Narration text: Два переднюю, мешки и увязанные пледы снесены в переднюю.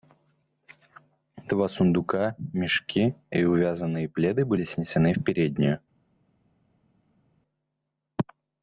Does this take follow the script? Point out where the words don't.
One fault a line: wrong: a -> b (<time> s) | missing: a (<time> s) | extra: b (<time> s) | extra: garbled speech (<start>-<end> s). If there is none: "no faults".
wrong: переднюю -> сундука (1.7 s)
extra: были (4.5 s)